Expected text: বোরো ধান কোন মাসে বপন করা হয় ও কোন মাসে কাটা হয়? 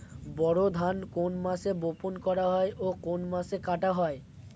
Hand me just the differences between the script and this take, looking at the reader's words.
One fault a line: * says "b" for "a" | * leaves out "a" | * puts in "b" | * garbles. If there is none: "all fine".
all fine